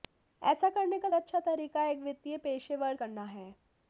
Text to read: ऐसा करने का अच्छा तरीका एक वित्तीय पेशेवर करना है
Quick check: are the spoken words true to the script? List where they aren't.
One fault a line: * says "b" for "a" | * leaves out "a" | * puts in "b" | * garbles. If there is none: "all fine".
all fine